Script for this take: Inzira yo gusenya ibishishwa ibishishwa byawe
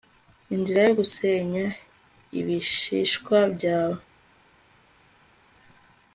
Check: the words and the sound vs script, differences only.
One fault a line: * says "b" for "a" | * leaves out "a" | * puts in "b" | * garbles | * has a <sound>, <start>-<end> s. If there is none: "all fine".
* leaves out "ibishishwa"